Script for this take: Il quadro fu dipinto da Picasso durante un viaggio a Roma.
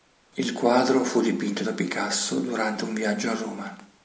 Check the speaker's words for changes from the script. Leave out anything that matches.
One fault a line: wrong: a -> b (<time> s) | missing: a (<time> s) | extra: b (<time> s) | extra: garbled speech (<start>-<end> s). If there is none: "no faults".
no faults